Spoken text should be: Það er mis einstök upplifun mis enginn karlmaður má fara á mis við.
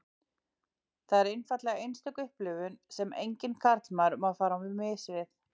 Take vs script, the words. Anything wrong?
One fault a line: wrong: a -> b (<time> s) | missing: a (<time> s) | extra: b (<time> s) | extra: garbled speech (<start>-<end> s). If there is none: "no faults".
wrong: mis -> einfaldlega (1.3 s)
wrong: mis -> sem (3.0 s)